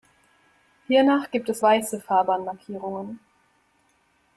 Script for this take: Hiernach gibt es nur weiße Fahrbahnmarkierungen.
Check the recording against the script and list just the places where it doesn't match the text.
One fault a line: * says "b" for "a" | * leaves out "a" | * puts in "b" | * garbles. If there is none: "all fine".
* leaves out "nur"